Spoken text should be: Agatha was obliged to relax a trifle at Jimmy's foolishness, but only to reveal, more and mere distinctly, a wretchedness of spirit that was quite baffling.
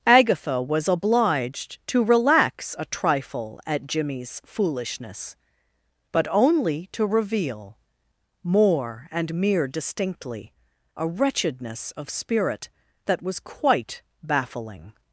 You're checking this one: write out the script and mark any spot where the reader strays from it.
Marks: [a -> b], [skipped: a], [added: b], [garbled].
Agatha was obliged to relax a trifle at Jimmy's foolishness, but only to reveal, more and mere distinctly, a wretchedness of spirit that was quite baffling.